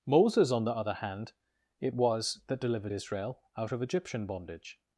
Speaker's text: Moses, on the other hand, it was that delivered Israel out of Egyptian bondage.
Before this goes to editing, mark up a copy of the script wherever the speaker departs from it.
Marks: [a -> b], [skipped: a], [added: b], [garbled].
Moses, on the other hand, it was that delivered Israel out of Egyptian bondage.